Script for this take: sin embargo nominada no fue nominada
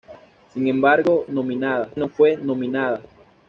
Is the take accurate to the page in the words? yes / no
yes